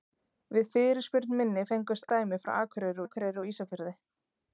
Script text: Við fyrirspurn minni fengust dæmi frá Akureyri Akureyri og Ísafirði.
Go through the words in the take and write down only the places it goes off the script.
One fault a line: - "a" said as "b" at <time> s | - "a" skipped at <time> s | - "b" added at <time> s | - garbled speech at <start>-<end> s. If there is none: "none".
none